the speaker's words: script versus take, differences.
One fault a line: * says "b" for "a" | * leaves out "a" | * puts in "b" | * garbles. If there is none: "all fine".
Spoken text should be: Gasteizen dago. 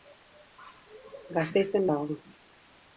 all fine